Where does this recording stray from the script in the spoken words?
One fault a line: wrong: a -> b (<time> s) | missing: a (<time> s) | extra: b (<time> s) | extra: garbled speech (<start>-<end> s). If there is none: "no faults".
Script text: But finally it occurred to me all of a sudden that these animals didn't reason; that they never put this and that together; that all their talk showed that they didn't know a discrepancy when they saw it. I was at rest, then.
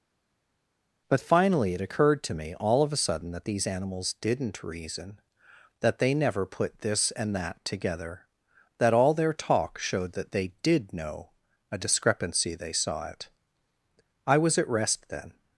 wrong: didn't -> did (10.6 s)
missing: when (12.6 s)